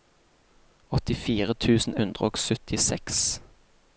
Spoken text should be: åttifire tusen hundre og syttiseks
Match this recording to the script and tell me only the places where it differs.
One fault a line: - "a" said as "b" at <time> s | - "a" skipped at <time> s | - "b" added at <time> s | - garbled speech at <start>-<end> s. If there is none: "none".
none